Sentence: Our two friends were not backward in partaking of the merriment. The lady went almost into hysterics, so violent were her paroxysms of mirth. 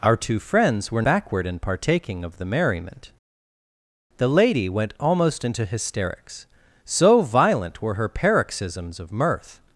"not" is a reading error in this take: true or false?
true